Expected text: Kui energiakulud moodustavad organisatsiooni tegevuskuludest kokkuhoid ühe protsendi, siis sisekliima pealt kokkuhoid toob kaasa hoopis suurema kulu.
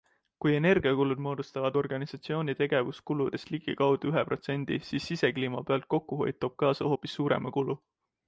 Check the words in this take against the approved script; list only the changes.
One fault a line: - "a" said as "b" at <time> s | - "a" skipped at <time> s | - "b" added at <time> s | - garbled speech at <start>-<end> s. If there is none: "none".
- "kokkuhoid" said as "ligikaudu" at 3.6 s